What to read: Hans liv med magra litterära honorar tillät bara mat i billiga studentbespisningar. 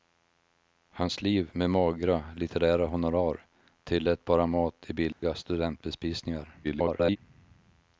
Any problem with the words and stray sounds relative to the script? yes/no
yes